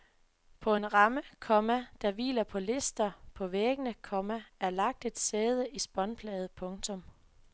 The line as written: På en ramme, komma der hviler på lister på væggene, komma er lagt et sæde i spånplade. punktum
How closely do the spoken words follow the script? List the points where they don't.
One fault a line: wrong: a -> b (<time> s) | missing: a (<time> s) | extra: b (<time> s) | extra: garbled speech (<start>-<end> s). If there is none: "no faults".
no faults